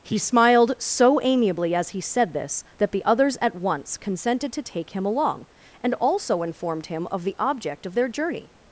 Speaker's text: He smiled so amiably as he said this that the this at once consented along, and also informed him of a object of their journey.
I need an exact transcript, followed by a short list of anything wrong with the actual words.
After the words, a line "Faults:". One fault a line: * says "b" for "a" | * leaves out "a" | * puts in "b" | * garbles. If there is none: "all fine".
He smiled so amiably as he said this that the others at once consented to take him along, and also informed him of the object of their journey.
Faults:
* says "others" for "this"
* puts in "to take him"
* says "the" for "a"